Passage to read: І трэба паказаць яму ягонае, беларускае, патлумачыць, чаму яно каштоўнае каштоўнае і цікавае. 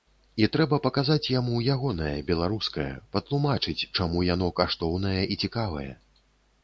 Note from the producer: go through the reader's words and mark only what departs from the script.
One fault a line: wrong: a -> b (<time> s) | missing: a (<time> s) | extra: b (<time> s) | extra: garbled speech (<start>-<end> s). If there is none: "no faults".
missing: каштоўнае (5.2 s)